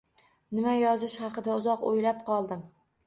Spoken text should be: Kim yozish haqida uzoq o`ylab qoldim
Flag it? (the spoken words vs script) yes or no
yes